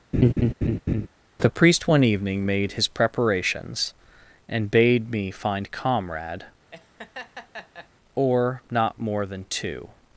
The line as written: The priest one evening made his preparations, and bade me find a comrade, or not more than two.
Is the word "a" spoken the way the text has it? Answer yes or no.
no